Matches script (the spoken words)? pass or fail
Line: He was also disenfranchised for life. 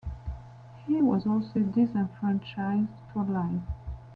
pass